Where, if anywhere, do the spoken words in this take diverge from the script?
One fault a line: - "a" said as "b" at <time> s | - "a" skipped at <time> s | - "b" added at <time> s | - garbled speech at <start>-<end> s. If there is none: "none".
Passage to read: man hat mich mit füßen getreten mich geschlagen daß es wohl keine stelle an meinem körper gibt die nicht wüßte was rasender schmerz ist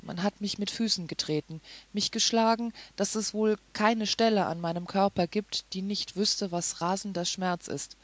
none